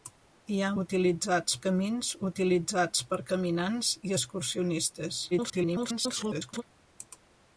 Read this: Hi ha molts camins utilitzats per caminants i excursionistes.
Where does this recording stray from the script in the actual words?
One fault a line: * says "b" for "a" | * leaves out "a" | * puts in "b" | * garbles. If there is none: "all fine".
* says "utilitzats" for "molts"
* garbles